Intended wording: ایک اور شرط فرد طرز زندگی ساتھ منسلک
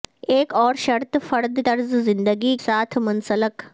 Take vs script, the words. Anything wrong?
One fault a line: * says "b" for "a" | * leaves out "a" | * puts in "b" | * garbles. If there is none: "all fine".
all fine